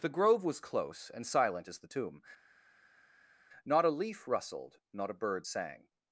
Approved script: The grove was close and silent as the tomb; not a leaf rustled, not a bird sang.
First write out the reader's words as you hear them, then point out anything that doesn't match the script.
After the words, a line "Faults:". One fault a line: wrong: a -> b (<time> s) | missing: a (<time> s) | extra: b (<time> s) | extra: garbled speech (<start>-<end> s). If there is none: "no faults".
The grove was close and silent as the tomb; not a leaf rustled, not a bird sang.
Faults:
no faults